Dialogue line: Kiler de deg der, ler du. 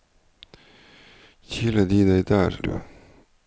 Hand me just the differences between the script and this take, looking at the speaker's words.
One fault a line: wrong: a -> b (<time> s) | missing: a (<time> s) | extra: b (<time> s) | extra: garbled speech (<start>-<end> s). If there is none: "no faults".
missing: ler (2.6 s)